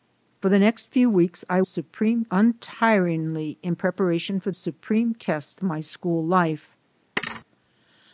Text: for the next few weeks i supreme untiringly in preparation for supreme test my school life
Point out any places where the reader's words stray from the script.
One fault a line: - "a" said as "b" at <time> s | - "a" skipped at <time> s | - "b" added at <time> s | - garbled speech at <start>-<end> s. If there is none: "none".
none